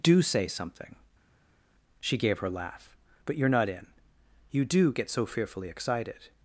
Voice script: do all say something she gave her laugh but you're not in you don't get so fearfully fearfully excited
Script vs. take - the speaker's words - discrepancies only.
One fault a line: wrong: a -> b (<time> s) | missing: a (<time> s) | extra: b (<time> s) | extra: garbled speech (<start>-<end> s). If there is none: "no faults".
missing: all (0.2 s)
wrong: don't -> do (4.6 s)
missing: fearfully (5.7 s)